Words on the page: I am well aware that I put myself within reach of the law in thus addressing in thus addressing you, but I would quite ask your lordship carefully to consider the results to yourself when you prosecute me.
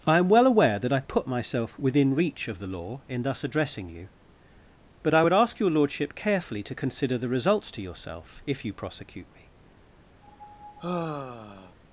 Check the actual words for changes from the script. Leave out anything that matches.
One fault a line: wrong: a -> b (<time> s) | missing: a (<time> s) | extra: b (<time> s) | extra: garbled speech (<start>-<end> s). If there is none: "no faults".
missing: in thus addressing (3.9 s)
missing: quite (5.3 s)
wrong: when -> if (8.5 s)